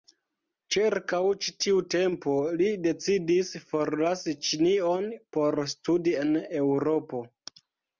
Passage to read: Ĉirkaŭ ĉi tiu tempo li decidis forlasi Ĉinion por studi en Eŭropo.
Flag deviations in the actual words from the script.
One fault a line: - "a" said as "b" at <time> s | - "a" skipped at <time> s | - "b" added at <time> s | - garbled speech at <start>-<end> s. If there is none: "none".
none